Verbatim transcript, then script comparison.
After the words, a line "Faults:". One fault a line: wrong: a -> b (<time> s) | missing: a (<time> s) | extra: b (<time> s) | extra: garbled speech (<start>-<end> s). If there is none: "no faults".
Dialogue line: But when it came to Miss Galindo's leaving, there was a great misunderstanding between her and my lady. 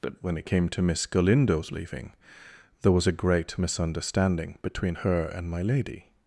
But when it came to Miss Galindo's leaving, there was a great misunderstanding between her and my lady.
Faults:
no faults